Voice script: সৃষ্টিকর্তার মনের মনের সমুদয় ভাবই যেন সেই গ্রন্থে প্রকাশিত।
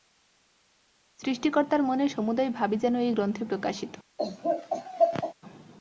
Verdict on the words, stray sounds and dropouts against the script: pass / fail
fail